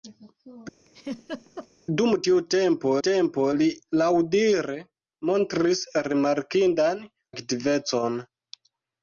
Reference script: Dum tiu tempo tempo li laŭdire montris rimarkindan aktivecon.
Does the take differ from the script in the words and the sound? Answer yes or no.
yes